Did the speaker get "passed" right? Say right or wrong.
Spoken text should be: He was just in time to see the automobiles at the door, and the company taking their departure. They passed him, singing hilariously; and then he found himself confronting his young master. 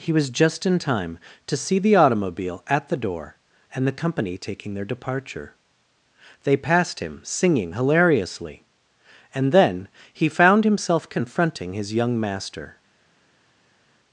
right